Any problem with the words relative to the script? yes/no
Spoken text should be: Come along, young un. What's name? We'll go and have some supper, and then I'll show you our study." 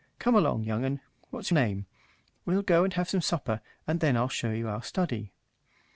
no